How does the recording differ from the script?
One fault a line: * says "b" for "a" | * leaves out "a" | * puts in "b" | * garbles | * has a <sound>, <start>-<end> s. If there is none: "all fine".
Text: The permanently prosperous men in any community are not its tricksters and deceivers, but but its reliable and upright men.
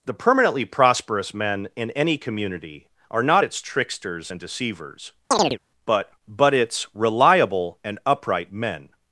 * has a chirp, 5.3-5.6 s